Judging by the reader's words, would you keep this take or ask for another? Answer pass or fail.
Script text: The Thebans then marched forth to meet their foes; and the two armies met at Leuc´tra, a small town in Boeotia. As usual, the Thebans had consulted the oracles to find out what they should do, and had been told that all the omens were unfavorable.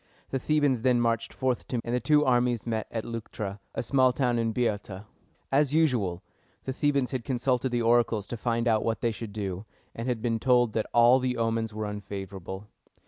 fail